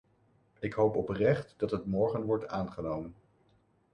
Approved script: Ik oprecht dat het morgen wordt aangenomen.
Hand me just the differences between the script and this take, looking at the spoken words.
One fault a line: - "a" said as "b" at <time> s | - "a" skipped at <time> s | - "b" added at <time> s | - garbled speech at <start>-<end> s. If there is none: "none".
- "hoop" added at 0.7 s